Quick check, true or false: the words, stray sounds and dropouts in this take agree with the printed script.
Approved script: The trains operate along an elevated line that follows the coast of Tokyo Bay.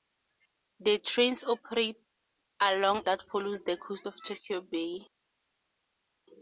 false